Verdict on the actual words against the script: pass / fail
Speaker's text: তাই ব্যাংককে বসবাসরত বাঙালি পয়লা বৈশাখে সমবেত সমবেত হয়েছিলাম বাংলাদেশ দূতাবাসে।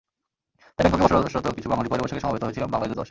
fail